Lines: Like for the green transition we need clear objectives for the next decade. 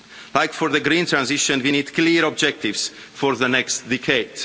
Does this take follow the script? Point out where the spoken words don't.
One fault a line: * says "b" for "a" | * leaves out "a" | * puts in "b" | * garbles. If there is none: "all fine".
all fine